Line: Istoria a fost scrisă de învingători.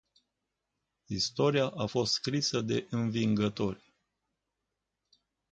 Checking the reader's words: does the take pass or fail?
pass